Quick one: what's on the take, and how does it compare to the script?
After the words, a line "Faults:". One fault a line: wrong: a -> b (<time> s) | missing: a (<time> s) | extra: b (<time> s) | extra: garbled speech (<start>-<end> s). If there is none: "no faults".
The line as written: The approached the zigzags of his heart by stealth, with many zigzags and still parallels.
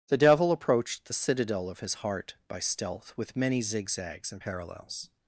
The devil approached the citadel of his heart by stealth, with many zigzags and parallels.
Faults:
extra: devil (0.2 s)
wrong: zigzags -> citadel (1.1 s)
missing: still (4.4 s)